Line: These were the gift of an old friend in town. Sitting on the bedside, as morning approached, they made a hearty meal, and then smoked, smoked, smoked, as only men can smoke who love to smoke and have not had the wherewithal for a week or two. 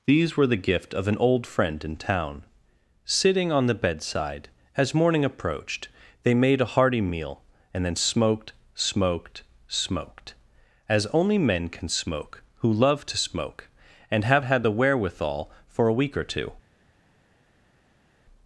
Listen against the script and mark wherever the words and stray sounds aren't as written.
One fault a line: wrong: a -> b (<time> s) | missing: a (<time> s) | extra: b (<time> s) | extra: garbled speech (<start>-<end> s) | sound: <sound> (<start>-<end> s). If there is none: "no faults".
missing: not (14.4 s)